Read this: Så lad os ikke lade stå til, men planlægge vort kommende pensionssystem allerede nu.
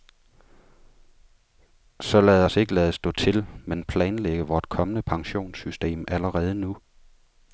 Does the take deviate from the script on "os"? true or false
false